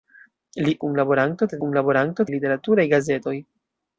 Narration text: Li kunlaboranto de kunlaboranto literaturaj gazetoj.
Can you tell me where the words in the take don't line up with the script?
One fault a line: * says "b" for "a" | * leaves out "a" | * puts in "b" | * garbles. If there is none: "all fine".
all fine